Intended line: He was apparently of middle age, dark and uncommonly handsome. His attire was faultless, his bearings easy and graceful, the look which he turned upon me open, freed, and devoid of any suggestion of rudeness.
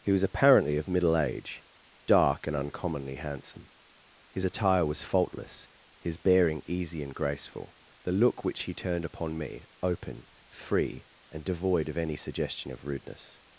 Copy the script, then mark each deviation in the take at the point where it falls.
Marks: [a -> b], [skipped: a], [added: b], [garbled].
He was apparently of middle age, dark and uncommonly handsome. His attire was faultless, his [bearings -> bearing] easy and graceful, the look which he turned upon me open, [freed, -> free] and devoid of any suggestion of rudeness.